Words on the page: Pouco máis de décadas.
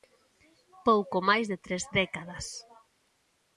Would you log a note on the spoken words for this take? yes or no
yes